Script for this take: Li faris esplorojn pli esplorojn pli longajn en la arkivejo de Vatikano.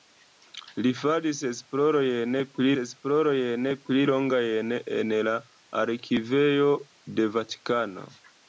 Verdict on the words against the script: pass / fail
pass